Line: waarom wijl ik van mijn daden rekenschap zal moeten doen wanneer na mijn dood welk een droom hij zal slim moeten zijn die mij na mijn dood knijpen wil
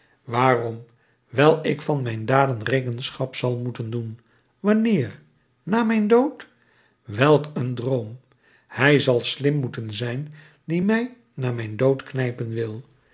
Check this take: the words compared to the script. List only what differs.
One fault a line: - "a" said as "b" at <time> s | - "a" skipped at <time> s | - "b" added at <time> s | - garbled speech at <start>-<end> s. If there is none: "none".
none